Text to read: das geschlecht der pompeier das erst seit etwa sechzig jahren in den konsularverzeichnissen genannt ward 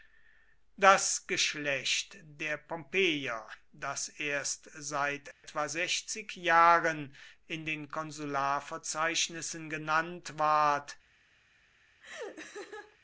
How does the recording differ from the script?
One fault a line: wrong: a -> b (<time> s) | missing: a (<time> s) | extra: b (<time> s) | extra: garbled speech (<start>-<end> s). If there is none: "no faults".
no faults